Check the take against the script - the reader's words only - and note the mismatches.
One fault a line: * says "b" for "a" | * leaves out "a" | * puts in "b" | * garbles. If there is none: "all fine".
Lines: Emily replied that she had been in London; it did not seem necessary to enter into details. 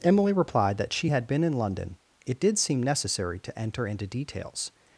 * leaves out "not"